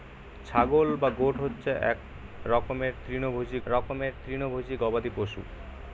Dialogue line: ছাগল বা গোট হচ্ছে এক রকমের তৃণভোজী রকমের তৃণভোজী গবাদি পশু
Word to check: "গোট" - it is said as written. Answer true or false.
true